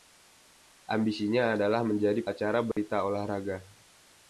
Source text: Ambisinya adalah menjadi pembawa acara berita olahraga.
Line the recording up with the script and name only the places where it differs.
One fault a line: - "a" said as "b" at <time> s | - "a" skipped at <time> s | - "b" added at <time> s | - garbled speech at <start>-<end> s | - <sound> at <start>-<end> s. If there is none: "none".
- "pembawa" skipped at 2.2 s
- dropout at 2.7-2.8 s